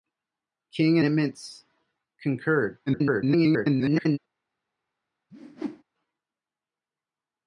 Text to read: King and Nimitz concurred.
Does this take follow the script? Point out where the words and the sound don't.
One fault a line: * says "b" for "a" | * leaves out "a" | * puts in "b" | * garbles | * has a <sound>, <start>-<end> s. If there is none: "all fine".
* leaves out "and"
* garbles
* has a whoosh, 5.3-5.8 s